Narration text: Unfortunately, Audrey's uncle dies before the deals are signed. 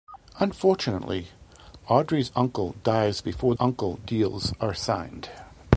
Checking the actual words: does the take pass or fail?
fail